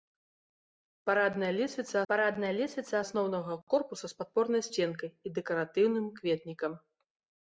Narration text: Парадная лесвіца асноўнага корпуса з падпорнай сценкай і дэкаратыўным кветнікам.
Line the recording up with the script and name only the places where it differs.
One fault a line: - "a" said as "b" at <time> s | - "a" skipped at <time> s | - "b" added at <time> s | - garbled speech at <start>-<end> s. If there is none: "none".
- "парадная лесвіца" added at 2.1 s